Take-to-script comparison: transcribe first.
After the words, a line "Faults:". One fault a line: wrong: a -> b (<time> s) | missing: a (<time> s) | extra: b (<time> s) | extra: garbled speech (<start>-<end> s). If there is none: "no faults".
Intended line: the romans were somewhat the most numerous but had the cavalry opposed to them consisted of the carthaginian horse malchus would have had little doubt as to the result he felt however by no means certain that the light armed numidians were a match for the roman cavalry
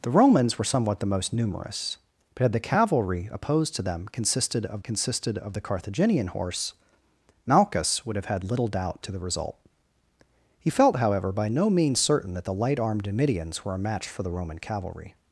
the romans were somewhat the most numerous but had the cavalry opposed to them consisted of consisted of the carthaginian horse malchus would have had little doubt to the result he felt however by no means certain that the light armed numidians were a match for the roman cavalry
Faults:
extra: consisted of (4.8 s)
missing: as (9.0 s)